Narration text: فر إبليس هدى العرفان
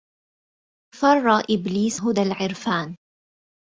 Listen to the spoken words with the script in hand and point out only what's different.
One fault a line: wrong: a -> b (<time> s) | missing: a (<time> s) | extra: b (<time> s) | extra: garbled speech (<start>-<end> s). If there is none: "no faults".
no faults